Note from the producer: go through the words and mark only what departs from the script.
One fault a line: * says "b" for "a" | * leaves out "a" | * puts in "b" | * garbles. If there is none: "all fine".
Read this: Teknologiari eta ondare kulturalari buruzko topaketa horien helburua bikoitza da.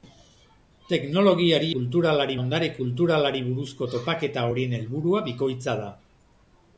* says "kulturalari" for "eta"